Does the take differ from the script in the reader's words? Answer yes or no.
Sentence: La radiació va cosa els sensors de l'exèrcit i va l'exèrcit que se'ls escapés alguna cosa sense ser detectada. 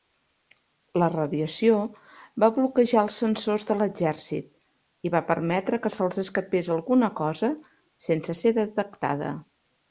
yes